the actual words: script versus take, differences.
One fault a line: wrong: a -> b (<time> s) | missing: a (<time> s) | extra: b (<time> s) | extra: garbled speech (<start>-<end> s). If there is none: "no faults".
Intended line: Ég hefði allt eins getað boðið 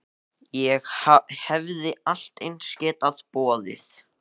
no faults